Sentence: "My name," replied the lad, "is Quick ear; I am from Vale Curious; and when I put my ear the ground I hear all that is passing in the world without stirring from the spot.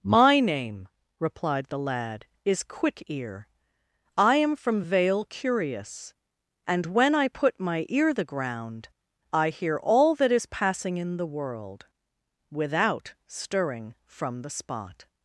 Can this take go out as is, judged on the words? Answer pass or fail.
pass